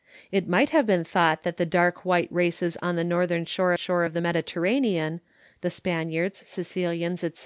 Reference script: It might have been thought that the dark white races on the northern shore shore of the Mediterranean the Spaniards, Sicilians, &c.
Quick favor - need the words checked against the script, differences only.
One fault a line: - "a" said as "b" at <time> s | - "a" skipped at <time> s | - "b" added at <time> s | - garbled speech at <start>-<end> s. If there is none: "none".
none